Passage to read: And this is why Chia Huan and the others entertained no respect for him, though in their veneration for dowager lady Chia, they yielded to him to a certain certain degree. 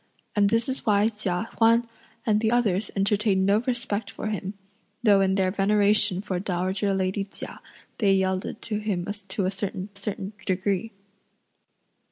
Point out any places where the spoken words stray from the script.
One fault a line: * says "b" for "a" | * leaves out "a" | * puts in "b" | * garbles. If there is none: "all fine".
all fine